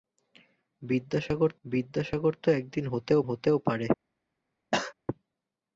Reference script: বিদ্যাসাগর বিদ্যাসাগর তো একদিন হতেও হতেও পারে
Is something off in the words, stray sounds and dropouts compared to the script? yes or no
yes